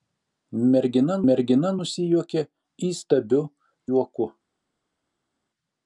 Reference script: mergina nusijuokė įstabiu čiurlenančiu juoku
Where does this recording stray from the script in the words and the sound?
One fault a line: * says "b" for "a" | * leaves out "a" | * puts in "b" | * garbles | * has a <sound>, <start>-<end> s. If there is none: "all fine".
* puts in "mergina"
* leaves out "čiurlenančiu"